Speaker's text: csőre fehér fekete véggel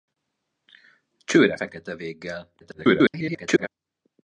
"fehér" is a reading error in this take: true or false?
true